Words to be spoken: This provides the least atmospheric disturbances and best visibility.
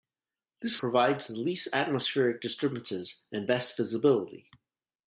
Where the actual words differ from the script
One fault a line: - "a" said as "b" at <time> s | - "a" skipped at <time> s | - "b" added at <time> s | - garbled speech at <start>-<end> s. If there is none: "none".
none